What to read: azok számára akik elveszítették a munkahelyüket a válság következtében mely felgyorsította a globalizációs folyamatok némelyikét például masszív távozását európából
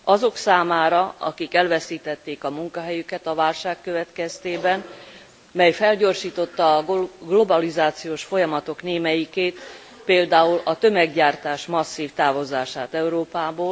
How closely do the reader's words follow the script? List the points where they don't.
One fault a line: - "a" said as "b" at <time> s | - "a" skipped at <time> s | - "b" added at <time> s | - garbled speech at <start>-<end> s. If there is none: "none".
- "a tömeggyártás" added at 10.6 s